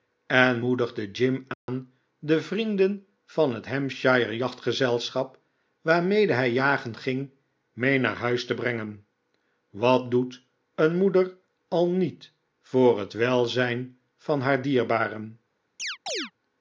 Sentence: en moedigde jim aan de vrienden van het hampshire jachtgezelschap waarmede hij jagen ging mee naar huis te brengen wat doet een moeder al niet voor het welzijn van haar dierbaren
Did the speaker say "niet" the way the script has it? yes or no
yes